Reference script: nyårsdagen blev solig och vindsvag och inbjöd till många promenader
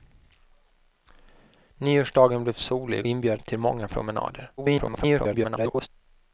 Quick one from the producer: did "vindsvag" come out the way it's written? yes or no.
no